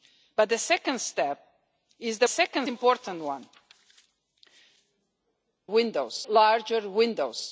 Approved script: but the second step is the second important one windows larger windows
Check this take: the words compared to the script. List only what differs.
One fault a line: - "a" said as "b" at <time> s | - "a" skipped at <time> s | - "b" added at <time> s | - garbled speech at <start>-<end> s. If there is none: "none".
none